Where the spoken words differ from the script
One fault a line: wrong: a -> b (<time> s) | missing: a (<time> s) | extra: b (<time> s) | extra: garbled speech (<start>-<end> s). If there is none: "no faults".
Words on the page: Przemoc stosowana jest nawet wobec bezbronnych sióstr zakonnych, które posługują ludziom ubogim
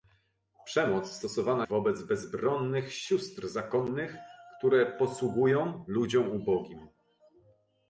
missing: jest nawet (1.7 s)